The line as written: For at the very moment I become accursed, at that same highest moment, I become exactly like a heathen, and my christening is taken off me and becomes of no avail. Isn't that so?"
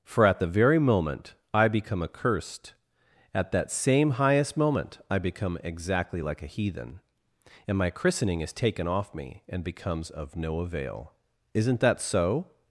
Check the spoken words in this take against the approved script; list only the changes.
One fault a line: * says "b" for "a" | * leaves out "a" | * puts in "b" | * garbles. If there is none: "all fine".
all fine